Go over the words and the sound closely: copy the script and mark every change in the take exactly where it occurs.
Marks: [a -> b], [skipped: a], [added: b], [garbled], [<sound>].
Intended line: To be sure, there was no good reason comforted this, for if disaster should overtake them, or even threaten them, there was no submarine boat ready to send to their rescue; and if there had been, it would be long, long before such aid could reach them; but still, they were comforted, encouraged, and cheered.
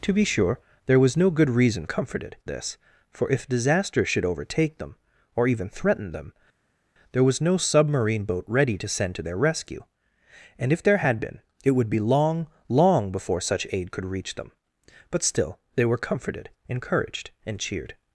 To be sure, there was no good reason comforted this, for if disaster should overtake them, or even threaten them, there was no submarine boat ready to send to their rescue; and if there had been, it would be long, long before such aid could reach them; but still, they were comforted, encouraged, and cheered.